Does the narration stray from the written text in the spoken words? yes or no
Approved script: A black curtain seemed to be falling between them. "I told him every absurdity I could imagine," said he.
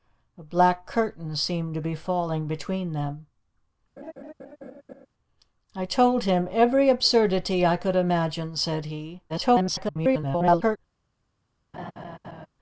yes